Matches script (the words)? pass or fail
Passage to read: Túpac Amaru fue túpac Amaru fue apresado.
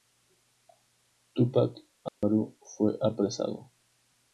fail